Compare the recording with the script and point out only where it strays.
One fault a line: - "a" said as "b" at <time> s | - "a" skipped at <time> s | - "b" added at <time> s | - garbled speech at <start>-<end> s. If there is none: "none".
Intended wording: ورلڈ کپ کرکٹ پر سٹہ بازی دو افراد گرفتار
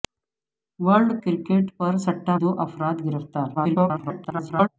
- "کپ" skipped at 1.1 s
- "بازی" skipped at 2.3 s
- garbled speech at 3.5-4.7 s